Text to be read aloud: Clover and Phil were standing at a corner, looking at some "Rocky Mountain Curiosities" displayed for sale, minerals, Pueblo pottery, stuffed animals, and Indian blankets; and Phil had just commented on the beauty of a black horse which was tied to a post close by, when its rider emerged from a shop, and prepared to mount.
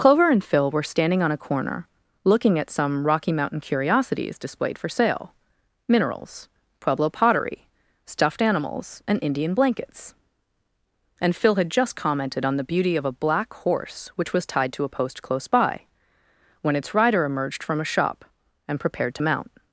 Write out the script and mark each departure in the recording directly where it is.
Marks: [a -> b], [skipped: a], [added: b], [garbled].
Clover and Phil were standing [at -> on] a corner, looking at some "Rocky Mountain Curiosities" displayed for sale, minerals, Pueblo pottery, stuffed animals, and Indian blankets; and Phil had just commented on the beauty of a black horse which was tied to a post close by, when its rider emerged from a shop, and prepared to mount.